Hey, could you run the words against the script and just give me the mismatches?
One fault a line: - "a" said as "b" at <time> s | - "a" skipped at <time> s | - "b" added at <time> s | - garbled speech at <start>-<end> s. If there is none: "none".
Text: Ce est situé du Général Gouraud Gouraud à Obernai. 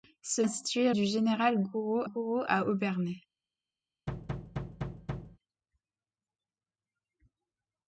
none